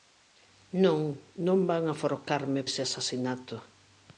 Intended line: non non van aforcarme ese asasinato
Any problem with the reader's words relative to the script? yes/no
no